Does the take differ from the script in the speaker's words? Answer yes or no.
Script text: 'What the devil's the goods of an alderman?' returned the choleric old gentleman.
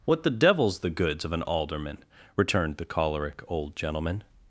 no